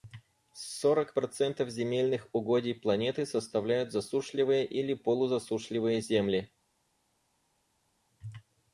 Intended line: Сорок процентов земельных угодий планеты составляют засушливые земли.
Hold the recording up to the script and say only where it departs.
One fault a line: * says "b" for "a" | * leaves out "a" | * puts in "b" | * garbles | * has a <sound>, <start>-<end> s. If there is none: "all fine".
* puts in "или полузасушливые"